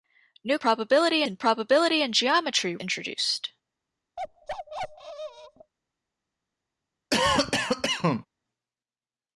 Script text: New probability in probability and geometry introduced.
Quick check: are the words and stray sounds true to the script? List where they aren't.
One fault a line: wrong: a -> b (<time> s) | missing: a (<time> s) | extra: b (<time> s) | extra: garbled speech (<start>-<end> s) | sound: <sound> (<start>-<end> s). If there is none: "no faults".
sound: bark (4.2-5.7 s)
sound: cough (7.1-8.3 s)